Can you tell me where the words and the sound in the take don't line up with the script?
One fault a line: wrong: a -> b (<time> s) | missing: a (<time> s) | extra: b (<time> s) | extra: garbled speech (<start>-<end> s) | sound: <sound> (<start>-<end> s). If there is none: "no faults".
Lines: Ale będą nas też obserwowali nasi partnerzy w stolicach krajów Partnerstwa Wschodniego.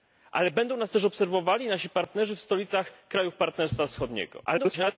extra: garbled speech (4.4-5.0 s)